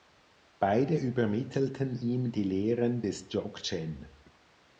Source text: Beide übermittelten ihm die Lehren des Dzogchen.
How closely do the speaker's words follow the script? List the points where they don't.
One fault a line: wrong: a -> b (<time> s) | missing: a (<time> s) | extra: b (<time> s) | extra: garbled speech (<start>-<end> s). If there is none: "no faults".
no faults